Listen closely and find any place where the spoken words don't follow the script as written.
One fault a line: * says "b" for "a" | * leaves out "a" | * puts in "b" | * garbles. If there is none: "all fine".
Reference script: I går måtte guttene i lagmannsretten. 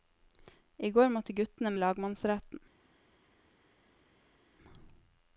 all fine